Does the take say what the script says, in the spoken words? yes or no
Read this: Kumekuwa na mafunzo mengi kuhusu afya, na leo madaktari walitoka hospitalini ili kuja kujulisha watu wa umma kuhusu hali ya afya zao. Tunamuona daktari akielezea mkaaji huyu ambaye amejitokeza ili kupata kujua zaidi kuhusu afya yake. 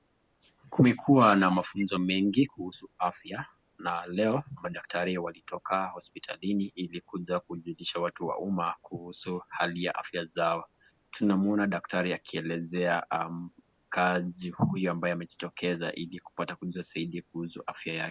yes